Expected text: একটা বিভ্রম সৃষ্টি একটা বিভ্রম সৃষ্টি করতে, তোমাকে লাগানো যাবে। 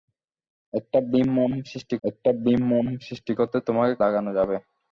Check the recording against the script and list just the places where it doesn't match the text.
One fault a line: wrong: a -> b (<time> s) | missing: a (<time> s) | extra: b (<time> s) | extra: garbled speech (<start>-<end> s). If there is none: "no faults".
no faults